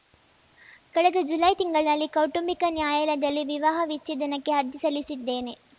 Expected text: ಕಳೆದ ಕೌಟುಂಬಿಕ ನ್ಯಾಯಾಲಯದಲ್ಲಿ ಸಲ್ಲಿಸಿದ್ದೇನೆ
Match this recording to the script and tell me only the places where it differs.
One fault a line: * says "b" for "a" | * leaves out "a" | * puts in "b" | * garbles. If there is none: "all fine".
* puts in "ಜುಲೈ ತಿಂಗಳಿನಲ್ಲಿ"
* puts in "ವಿವಾಹ ವಿಚ್ಛೇದನಕ್ಕೆ ಅರ್ಜಿ"